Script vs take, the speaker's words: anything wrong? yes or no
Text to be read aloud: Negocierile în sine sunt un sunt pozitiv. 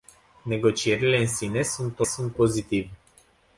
no